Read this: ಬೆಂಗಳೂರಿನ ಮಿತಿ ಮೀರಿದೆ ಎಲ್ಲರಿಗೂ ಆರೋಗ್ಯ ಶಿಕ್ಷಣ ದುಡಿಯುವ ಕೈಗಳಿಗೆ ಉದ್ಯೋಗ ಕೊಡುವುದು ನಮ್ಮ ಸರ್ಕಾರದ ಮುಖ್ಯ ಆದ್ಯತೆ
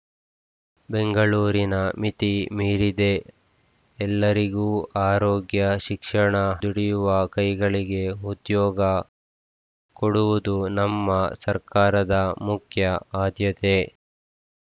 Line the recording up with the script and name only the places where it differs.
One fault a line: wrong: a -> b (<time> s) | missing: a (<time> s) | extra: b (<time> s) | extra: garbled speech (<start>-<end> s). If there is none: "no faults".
no faults